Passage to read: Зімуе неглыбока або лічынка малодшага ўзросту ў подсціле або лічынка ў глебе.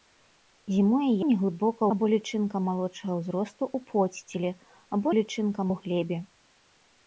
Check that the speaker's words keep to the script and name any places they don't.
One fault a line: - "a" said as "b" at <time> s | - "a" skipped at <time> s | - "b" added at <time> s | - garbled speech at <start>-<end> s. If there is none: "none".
none